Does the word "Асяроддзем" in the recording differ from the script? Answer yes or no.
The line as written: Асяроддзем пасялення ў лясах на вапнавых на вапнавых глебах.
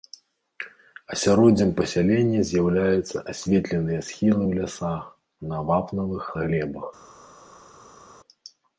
no